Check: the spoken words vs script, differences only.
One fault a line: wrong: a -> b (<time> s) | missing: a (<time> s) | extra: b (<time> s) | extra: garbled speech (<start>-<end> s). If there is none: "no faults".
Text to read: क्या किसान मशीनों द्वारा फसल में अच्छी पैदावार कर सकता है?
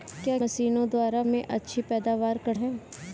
missing: किसान (0.4 s)
missing: फसल (1.2 s)
missing: सकता (2.5 s)